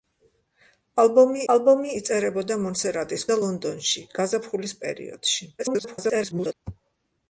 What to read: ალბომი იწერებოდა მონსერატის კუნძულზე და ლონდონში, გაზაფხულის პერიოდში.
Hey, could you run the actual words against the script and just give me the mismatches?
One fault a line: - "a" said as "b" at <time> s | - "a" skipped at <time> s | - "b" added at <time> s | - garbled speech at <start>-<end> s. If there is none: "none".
- "ალბომი" added at 1.5 s
- "კუნძულზე" skipped at 3.3 s
- garbled speech at 5.6-6.5 s